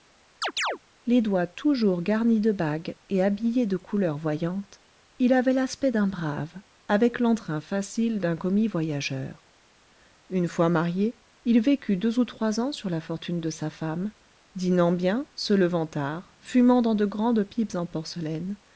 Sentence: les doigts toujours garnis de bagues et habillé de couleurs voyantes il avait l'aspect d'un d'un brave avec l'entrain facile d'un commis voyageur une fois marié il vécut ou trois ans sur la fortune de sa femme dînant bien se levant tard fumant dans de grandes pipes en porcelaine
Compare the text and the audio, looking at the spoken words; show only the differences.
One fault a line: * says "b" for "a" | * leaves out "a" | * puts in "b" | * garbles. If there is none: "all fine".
* leaves out "d'un"
* puts in "deux"